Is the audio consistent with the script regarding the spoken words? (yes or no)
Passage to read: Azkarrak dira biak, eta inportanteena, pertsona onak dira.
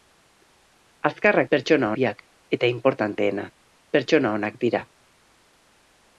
no